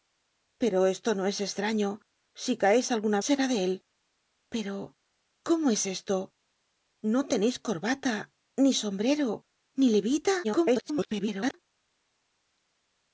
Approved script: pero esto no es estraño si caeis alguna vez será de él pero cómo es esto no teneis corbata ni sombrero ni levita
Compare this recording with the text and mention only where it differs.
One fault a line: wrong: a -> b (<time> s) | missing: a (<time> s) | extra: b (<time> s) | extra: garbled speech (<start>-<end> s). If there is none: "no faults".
missing: vez (3.2 s)
extra: garbled speech (10.4-11.5 s)